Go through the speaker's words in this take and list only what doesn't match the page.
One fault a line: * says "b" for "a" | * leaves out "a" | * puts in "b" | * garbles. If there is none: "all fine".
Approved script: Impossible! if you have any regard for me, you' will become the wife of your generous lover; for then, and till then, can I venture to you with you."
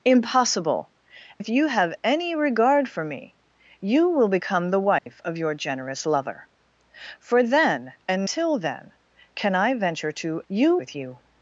all fine